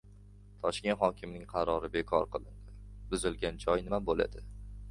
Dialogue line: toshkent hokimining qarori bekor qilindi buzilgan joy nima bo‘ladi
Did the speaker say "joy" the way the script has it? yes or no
yes